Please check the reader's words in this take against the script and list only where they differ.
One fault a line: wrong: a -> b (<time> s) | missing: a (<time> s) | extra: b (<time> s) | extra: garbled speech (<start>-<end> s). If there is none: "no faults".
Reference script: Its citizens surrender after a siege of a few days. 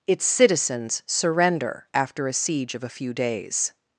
no faults